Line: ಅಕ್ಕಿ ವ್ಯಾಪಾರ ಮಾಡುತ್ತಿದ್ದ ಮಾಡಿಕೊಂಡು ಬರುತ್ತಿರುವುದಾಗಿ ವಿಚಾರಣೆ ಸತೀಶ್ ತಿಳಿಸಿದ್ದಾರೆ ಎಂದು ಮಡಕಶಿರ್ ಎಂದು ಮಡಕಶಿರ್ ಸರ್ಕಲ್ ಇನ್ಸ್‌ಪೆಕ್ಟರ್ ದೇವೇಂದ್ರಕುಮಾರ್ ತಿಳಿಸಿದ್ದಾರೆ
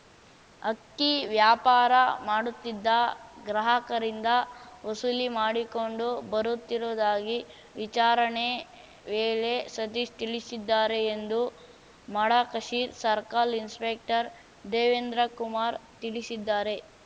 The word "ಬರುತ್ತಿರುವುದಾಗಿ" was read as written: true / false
true